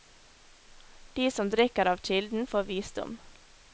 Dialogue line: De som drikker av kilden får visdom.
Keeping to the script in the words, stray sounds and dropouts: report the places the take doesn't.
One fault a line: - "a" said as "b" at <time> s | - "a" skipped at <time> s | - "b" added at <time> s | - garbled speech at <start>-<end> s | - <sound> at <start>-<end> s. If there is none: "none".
none